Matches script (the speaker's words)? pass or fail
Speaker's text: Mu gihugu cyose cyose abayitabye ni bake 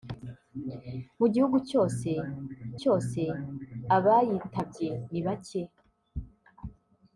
pass